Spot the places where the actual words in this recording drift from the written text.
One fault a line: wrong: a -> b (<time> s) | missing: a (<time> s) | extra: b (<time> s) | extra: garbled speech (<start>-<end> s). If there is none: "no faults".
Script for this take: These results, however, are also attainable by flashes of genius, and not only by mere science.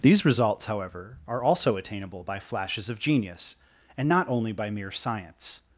no faults